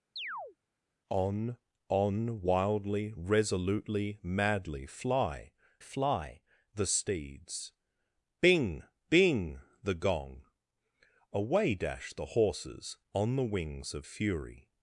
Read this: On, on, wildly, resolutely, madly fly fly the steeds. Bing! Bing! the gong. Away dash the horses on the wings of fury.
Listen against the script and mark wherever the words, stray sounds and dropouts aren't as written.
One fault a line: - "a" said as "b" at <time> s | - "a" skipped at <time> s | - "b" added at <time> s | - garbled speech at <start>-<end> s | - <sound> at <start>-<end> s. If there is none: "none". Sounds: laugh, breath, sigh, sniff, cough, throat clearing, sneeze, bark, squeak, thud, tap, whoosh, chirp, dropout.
- chirp at 0.2-0.6 s